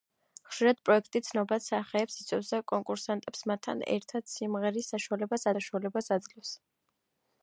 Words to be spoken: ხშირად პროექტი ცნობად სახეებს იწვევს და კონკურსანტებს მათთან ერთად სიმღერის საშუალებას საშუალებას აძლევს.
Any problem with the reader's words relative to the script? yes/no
no